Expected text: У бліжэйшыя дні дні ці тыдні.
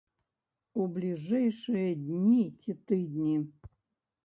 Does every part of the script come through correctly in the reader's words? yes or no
no